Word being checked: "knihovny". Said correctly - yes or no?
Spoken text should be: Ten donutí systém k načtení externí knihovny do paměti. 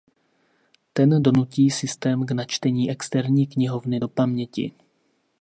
yes